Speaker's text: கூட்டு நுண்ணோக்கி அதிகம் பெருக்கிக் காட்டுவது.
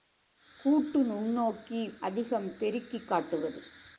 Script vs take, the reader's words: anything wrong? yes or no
no